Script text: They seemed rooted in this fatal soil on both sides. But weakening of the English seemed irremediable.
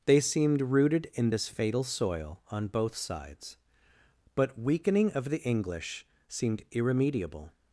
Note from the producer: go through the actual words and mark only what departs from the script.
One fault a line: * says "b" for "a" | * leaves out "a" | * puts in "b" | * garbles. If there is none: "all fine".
all fine